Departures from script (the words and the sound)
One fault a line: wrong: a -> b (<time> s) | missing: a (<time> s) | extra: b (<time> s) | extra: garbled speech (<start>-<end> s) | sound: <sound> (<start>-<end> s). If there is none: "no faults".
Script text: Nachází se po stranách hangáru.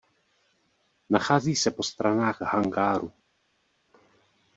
no faults